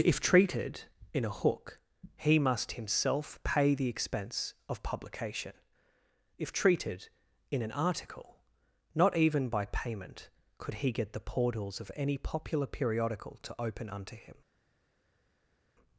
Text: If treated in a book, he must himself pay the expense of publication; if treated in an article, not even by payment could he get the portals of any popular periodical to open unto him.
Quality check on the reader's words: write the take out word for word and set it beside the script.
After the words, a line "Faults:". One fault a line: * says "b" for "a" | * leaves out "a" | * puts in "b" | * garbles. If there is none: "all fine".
If treated in a hook, he must himself pay the expense of publication; if treated in an article, not even by payment could he get the portals of any popular periodical to open unto him.
Faults:
* says "hook" for "book"